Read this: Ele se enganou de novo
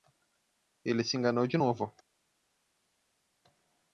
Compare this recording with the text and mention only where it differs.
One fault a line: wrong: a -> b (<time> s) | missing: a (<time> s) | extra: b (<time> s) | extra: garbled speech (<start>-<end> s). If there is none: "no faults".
no faults